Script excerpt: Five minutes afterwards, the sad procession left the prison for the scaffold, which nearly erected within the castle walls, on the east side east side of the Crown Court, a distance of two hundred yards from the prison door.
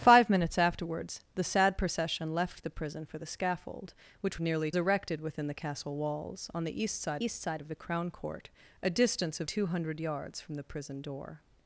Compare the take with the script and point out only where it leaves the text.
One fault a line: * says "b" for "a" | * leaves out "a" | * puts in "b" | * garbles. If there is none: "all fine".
all fine